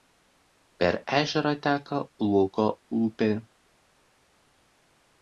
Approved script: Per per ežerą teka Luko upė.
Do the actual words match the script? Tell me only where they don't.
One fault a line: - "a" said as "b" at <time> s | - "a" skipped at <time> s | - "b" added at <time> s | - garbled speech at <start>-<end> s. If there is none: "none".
- "per" skipped at 1.0 s